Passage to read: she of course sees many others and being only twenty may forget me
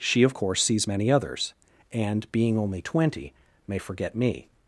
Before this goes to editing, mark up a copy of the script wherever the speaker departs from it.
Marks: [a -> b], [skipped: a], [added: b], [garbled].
she of course sees many others and being only twenty may forget me